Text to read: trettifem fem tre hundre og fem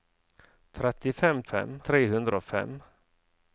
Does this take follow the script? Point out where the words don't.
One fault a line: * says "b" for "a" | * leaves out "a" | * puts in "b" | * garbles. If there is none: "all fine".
all fine